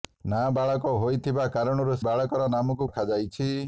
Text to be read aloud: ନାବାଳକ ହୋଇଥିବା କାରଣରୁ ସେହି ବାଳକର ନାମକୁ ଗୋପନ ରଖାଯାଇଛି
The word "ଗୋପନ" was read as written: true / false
false